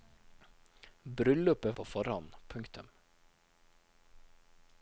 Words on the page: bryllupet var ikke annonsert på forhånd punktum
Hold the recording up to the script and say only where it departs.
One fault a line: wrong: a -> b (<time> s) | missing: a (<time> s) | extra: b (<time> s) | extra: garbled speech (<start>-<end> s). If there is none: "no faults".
missing: var ikke annonsert (1.8 s)